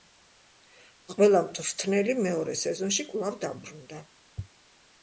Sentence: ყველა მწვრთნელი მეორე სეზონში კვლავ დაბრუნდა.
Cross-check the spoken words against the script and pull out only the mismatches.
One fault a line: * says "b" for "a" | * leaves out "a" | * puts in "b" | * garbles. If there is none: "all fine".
all fine